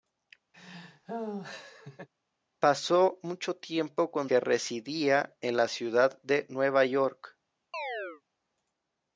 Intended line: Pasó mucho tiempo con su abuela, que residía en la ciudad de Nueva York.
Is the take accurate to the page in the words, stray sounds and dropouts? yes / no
no